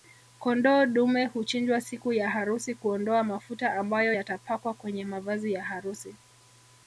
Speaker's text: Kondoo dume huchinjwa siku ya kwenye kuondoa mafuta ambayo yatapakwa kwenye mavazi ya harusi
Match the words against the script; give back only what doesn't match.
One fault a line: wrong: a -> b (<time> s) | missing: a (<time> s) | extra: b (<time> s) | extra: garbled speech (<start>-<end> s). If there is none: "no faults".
wrong: kwenye -> harusi (2.3 s)